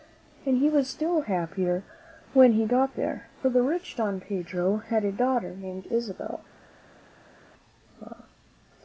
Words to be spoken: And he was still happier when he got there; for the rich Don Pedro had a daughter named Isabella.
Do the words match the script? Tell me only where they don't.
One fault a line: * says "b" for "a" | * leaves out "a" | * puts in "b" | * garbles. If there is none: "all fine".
all fine